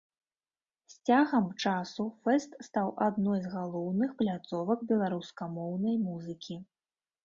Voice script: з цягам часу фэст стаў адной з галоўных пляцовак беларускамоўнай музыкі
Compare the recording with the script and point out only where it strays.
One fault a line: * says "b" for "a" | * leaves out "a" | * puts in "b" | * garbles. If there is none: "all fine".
all fine